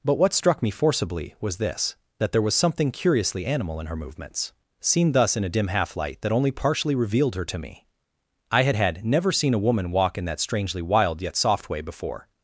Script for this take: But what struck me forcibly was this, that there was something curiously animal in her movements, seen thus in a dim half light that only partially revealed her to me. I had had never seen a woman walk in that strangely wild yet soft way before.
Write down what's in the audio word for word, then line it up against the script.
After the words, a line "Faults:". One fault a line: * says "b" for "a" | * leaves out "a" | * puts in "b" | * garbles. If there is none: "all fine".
But what struck me forcibly was this, that there was something curiously animal in her movements, seen thus in a dim half light that only partially revealed her to me. I had had never seen a woman walk in that strangely wild yet soft way before.
Faults:
all fine